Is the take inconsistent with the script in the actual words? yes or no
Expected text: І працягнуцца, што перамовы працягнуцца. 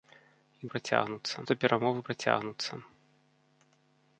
no